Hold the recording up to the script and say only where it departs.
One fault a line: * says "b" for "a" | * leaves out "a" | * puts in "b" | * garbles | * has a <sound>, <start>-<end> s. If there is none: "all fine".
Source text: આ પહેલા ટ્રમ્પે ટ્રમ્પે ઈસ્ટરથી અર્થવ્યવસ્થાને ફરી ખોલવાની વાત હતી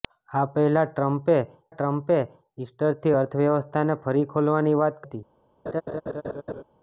* has a laugh, 5.7-6.6 s